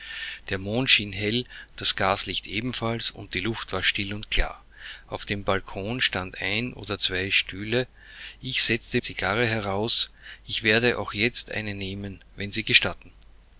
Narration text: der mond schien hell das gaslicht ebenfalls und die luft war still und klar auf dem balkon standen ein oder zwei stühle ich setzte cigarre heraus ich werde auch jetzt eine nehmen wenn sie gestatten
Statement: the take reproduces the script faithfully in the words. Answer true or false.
true